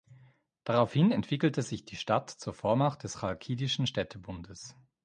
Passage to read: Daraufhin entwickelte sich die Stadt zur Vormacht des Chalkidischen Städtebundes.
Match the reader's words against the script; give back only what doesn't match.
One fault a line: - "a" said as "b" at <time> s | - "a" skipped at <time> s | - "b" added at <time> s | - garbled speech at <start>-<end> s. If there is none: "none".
none